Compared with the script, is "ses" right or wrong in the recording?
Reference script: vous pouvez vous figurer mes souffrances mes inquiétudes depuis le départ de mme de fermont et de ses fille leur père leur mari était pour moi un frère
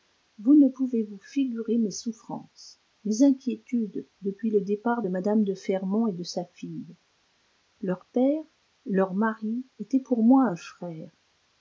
wrong